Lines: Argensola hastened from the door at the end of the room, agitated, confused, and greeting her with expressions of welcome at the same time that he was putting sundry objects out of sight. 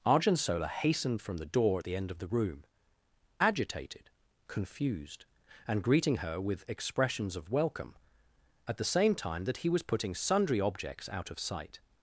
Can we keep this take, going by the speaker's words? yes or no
yes